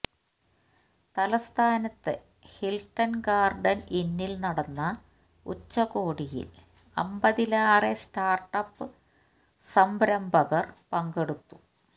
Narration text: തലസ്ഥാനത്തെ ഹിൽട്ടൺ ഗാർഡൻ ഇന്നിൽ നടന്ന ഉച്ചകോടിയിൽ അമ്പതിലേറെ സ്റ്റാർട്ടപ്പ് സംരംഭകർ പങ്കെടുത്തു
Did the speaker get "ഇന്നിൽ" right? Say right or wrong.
right